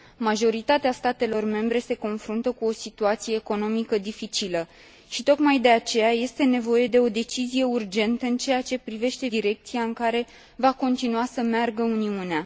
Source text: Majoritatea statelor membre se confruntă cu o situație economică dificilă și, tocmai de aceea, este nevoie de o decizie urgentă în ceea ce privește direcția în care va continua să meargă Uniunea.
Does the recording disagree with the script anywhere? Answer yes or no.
no